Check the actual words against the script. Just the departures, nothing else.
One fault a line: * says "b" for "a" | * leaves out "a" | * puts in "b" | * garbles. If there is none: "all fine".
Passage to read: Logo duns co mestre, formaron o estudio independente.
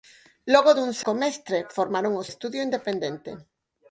all fine